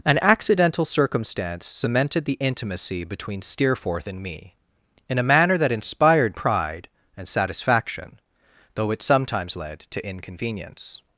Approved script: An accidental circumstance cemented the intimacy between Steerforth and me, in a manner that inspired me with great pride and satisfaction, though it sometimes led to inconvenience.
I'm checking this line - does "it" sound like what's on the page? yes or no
yes